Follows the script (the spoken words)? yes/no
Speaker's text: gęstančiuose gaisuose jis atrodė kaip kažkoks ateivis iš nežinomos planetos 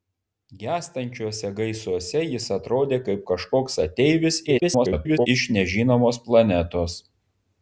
no